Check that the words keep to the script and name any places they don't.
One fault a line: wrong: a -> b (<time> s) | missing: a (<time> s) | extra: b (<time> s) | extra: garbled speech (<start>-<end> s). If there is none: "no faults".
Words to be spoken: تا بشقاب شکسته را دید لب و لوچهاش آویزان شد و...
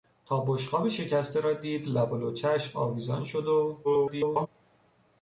extra: garbled speech (3.8-4.5 s)